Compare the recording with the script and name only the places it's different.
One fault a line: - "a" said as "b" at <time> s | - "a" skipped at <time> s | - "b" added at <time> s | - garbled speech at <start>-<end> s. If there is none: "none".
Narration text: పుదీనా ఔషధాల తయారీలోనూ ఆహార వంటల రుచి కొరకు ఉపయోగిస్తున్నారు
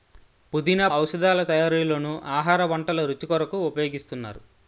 none